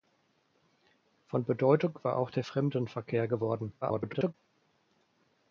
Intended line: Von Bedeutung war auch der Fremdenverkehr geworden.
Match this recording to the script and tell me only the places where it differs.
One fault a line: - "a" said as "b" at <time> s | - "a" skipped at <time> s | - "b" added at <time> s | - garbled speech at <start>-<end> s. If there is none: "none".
- garbled speech at 3.8-4.3 s